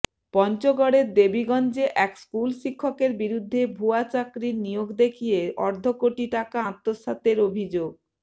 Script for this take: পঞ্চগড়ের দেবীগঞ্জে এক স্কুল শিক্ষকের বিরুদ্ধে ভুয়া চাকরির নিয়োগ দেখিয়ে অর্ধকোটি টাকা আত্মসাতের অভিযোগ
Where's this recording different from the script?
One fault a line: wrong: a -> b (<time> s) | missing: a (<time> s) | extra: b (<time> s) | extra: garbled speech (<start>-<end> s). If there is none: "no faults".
no faults